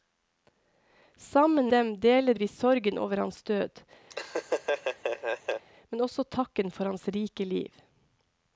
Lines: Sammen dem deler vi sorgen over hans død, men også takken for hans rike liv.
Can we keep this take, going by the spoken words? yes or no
yes